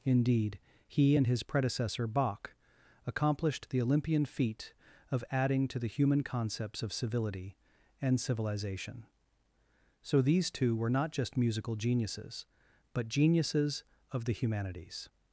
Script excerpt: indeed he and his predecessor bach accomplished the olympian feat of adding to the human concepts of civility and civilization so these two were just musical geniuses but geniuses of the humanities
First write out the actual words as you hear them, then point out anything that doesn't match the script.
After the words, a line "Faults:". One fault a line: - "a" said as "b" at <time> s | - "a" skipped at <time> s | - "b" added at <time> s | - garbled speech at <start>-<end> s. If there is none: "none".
indeed he and his predecessor bach accomplished the olympian feat of adding to the human concepts of civility and civilization so these two were not just musical geniuses but geniuses of the humanities
Faults:
- "not" added at 10.9 s